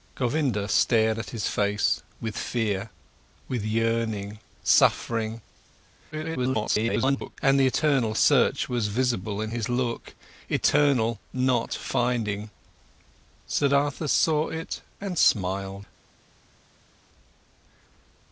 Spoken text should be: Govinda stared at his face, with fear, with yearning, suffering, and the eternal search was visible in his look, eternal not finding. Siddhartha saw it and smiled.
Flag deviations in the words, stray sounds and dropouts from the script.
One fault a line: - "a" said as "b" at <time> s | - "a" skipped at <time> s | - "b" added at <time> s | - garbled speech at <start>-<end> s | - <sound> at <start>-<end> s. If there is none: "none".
- garbled speech at 6.1-7.4 s